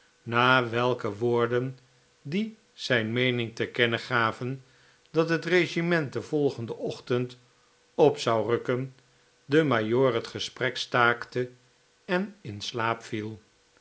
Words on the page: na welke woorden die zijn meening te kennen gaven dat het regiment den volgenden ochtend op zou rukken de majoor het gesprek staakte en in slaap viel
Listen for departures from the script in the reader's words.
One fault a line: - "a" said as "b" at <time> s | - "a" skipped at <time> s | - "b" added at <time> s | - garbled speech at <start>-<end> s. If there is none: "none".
none